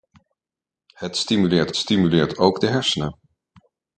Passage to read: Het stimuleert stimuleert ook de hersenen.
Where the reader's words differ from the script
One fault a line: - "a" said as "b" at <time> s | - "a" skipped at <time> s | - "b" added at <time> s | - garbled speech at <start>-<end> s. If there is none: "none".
none